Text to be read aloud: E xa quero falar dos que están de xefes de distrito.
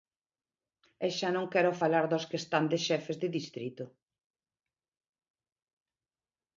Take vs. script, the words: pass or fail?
fail